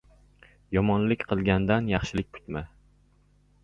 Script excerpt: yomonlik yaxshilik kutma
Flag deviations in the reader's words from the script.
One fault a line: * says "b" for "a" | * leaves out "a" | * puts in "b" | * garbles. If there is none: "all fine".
* puts in "qilgandan"